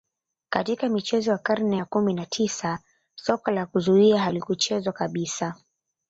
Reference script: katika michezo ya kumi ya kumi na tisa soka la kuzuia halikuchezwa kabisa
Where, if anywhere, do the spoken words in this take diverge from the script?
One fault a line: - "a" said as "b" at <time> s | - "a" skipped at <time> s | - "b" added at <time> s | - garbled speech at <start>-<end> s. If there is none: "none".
- "kumi" said as "karne" at 1.4 s